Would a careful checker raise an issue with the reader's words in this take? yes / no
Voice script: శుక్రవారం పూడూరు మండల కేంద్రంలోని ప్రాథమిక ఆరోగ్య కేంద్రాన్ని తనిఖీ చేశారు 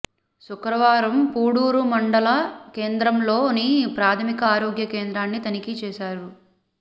no